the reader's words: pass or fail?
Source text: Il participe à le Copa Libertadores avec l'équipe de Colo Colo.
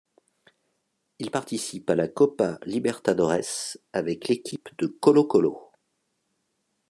fail